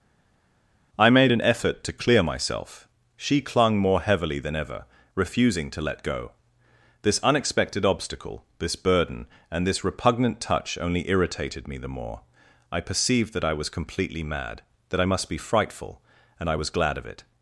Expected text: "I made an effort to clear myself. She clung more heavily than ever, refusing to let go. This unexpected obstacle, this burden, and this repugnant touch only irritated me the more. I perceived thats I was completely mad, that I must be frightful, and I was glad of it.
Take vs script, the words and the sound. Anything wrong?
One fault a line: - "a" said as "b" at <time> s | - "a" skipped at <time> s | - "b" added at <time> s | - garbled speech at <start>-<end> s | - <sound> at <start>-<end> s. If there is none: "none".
- "thats" said as "that" at 13.3 s